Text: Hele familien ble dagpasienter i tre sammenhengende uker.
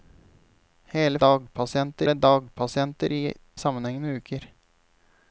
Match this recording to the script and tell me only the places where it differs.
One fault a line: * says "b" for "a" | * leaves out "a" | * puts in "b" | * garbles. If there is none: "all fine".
* says "dagpasienter" for "familien"
* leaves out "tre"